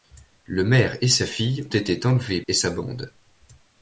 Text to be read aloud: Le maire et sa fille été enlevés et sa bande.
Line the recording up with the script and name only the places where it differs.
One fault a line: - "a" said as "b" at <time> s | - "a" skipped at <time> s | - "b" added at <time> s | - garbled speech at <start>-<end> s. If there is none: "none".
none